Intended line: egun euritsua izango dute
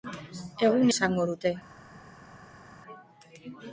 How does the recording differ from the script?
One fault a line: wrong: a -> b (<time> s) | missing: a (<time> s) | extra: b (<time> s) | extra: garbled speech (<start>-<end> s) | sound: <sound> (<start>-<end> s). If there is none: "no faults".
missing: euritsua (0.9 s)